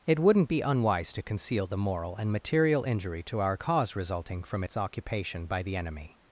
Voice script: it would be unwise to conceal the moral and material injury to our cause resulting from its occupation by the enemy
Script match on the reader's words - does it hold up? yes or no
no